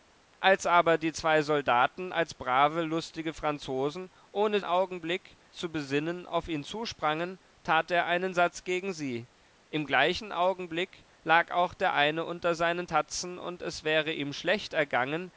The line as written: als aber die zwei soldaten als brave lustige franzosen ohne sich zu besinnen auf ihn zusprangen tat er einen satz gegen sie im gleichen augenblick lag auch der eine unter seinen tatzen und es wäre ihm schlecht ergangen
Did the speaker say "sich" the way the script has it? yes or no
no